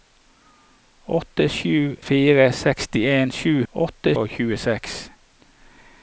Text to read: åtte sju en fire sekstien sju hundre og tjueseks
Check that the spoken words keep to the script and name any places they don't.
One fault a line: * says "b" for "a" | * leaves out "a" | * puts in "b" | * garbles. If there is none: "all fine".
* leaves out "en"
* says "åtte" for "hundre"